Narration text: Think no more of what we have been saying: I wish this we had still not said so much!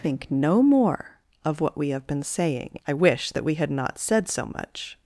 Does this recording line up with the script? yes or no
no